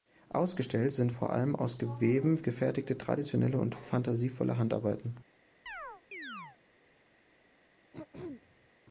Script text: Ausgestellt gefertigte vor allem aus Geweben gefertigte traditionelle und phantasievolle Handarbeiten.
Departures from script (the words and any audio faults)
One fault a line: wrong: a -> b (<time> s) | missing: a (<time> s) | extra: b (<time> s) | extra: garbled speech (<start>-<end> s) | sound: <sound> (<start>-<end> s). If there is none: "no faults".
wrong: gefertigte -> sind (0.9 s)
sound: chirp (5.7-6.6 s)
sound: throat clearing (7.9-8.7 s)